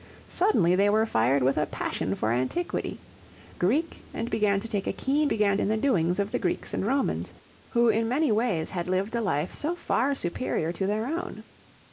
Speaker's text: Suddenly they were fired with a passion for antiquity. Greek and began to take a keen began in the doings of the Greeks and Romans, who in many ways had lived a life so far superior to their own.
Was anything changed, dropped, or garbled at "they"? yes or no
no